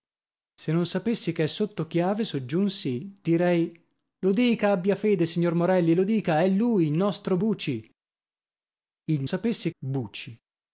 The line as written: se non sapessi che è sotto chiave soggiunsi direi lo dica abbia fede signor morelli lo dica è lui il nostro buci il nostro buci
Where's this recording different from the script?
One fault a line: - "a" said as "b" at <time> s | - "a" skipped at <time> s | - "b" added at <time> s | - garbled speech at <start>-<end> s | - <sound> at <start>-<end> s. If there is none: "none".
- "nostro" said as "sapessi" at 9.2 s